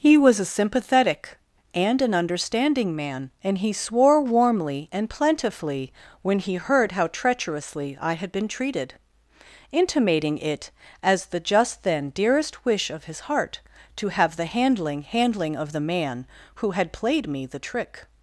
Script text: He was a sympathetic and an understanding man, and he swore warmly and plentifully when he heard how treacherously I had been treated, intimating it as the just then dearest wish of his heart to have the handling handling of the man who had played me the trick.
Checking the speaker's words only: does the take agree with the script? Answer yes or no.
yes